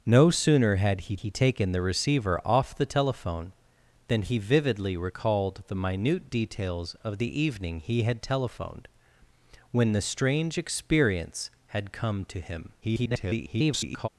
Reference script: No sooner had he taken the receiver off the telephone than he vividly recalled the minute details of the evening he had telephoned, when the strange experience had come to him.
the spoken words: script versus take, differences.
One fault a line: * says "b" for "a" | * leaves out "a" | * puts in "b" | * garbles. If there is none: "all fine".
* puts in "he"
* garbles